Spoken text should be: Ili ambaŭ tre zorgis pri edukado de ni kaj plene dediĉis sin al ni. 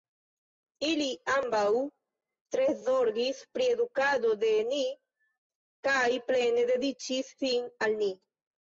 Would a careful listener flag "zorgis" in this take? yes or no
no